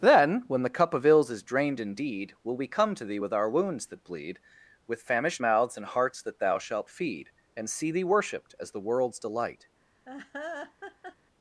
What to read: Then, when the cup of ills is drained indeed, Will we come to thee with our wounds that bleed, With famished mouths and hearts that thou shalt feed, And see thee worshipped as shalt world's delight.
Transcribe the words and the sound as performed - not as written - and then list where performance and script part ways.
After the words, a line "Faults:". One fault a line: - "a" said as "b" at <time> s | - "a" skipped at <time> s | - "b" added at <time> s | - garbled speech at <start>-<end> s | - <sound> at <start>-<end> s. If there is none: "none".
Then, when the cup of ills is drained indeed, Will we come to thee with our wounds that bleed, With famished mouths and hearts that thou shalt feed, And see thee worshipped as the world's delight.
Faults:
- "shalt" said as "the" at 8.7 s
- laugh at 10.1-11.2 s